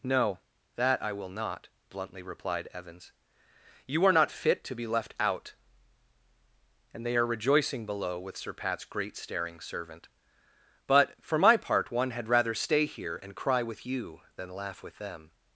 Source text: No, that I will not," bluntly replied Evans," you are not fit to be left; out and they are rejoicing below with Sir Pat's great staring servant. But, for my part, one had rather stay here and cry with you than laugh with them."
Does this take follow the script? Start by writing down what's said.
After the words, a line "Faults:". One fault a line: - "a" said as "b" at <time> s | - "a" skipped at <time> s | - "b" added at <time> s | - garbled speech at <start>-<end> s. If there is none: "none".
No, that I will not," bluntly replied Evans," you are not fit to be left; out and they are rejoicing below with Sir Pat's great staring servant. But, for my part, one had rather stay here and cry with you than laugh with them."
Faults:
none